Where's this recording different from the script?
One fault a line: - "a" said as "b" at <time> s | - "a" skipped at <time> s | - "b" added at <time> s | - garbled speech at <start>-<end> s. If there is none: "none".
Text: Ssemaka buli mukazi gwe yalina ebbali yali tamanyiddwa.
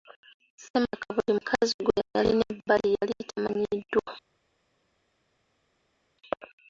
none